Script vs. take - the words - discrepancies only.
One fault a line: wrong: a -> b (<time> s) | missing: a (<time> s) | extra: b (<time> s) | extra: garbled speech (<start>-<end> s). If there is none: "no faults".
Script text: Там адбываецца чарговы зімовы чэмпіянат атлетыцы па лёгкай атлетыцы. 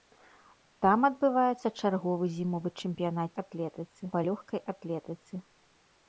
no faults